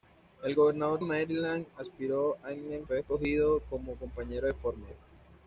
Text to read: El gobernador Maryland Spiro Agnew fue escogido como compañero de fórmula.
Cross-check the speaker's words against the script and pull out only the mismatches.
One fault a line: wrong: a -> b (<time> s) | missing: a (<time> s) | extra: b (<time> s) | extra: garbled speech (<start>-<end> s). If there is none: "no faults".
no faults